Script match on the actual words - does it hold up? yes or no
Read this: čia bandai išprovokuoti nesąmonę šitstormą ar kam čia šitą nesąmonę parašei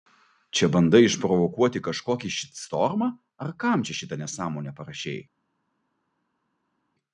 no